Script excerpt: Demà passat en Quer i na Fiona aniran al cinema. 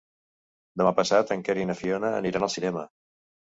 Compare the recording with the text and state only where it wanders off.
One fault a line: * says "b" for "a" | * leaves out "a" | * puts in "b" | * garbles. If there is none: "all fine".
all fine